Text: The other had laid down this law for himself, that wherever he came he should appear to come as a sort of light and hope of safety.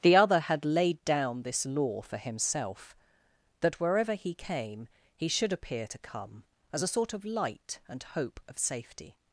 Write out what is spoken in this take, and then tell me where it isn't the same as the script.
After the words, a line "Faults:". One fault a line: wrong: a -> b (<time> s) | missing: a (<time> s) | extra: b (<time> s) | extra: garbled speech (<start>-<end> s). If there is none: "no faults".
The other had laid down this law for himself, that wherever he came he should appear to come as a sort of light and hope of safety.
Faults:
no faults